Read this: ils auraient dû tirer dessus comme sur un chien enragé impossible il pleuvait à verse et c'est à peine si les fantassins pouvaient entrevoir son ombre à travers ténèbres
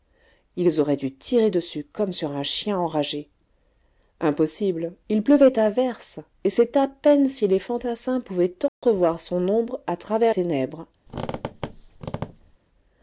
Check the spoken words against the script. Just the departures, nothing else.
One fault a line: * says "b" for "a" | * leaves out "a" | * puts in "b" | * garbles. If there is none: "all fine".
all fine